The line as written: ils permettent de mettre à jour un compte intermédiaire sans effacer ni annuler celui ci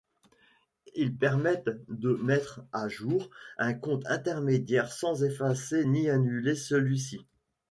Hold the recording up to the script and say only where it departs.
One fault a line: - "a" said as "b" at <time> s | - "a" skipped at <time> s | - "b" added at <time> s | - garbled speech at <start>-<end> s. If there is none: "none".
none